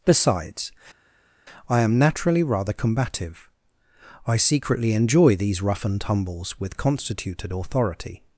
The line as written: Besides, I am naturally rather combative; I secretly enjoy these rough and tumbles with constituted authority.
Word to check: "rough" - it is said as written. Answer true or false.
true